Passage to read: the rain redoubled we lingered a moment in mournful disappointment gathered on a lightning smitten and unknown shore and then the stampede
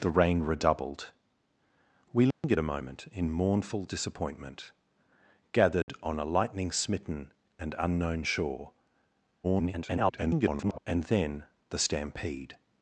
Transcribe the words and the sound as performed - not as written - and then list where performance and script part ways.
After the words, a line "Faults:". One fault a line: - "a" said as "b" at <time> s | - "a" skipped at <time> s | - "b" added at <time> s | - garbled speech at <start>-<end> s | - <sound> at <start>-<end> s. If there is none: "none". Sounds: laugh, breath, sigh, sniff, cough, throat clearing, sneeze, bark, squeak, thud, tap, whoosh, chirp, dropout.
the rain redoubled we lingered a moment in mournful disappointment gathered on a lightning smitten and unknown shore [garbled] and then the stampede
Faults:
- dropout at 2.3-2.4 s
- dropout at 5.8-5.9 s
- garbled speech at 9.4-10.8 s